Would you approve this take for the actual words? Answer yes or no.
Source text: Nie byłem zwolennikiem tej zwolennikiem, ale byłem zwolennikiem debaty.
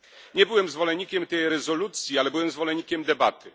no